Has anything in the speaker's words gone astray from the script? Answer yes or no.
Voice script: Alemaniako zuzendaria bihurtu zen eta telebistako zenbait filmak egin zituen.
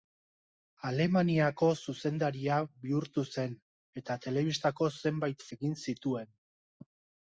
yes